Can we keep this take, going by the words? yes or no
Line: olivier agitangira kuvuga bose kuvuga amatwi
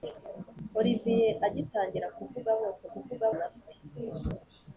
yes